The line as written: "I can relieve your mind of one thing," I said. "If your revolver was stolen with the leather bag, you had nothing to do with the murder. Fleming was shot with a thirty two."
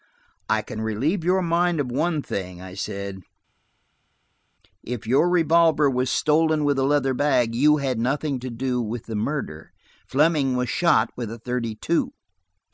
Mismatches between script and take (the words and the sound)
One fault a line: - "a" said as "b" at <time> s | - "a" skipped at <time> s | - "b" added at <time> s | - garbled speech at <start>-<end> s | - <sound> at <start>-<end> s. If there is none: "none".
none